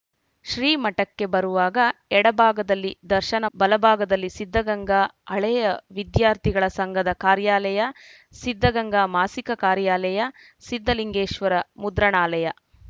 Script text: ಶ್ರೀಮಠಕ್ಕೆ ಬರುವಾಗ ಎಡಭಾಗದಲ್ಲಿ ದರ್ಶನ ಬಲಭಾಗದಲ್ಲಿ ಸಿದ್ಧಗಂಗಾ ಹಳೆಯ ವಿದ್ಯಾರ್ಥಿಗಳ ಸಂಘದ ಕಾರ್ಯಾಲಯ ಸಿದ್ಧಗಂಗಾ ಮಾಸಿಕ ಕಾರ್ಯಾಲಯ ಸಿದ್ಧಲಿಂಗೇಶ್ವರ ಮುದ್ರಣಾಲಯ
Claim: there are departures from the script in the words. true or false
false